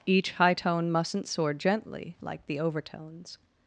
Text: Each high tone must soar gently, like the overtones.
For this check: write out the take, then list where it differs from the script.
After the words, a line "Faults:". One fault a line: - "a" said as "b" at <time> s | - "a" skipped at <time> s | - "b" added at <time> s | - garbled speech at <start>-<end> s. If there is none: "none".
Each high tone mustn't soar gently, like the overtones.
Faults:
- "must" said as "mustn't" at 0.9 s